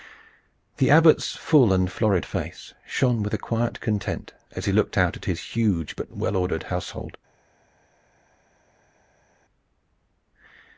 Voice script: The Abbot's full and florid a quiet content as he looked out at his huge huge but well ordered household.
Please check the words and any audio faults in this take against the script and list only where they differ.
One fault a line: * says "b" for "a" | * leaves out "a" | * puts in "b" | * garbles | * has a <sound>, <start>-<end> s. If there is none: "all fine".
* puts in "face shone with"
* leaves out "huge"